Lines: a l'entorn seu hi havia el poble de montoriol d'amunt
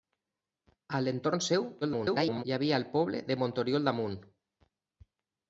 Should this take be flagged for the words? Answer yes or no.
yes